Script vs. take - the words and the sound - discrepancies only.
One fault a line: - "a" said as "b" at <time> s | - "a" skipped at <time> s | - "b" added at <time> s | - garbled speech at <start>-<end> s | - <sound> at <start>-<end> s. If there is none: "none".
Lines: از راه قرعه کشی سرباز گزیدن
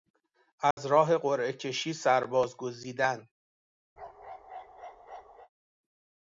- dropout at 0.7-0.8 s
- bark at 4.0-5.5 s